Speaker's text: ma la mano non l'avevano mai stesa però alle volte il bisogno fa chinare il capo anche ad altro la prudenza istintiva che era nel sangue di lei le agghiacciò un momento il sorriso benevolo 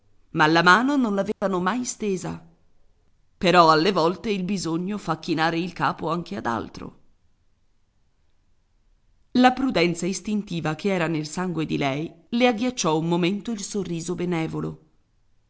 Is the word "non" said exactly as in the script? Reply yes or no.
yes